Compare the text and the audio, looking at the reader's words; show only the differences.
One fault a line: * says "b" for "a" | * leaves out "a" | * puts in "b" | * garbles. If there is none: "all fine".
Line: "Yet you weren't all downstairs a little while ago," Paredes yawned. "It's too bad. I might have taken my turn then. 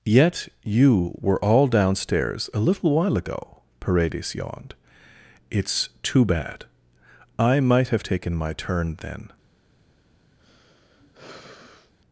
* says "were" for "weren't"